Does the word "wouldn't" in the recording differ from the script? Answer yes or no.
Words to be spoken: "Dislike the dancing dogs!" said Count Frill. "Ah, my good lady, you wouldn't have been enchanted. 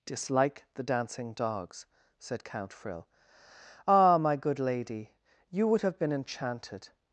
yes